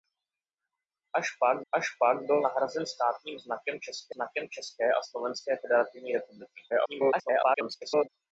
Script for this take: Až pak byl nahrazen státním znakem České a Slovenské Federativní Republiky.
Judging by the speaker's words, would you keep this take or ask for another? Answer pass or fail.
fail